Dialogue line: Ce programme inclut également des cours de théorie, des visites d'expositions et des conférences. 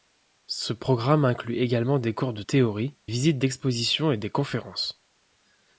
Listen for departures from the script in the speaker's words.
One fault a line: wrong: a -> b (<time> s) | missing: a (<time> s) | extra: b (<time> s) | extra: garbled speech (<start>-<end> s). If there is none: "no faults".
missing: des (3.0 s)